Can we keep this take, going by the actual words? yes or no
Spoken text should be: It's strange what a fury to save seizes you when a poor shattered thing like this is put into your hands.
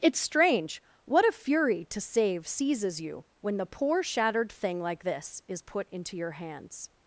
no